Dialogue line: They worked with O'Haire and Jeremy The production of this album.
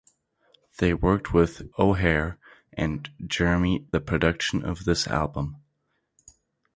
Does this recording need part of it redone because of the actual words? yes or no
no